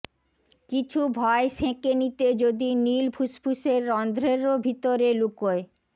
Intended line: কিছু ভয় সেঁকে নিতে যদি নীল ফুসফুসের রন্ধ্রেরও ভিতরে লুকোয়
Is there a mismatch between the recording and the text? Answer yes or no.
no